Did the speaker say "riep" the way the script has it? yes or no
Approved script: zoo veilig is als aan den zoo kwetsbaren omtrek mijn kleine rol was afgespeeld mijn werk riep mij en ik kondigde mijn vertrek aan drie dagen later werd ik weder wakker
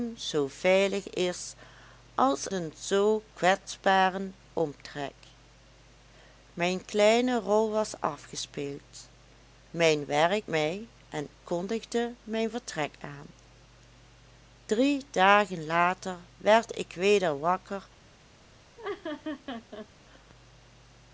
no